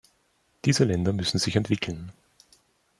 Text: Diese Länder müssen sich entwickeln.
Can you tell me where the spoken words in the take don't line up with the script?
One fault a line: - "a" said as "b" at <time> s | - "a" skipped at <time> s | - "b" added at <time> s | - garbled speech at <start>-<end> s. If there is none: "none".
none